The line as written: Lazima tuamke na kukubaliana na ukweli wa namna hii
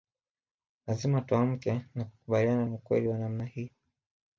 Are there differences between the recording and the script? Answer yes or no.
no